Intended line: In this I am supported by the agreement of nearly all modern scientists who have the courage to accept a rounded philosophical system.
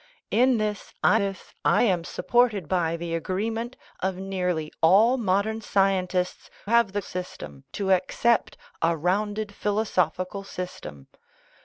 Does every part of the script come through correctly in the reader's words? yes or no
no